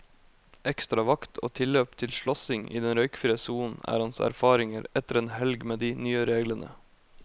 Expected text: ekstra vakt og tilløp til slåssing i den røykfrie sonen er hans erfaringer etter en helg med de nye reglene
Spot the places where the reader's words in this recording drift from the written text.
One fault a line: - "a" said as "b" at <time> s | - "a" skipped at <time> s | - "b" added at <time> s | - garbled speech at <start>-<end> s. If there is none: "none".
none